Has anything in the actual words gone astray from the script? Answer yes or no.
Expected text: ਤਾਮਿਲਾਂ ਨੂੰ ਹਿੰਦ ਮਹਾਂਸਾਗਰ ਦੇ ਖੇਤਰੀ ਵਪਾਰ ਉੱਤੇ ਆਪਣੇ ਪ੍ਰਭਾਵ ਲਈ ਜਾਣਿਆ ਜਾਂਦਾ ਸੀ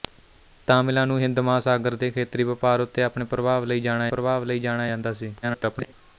yes